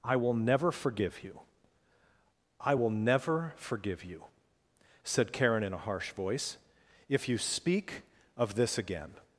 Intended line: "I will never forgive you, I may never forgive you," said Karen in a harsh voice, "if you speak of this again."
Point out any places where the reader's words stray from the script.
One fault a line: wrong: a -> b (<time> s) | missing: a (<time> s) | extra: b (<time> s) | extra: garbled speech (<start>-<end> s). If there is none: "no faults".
wrong: may -> will (2.7 s)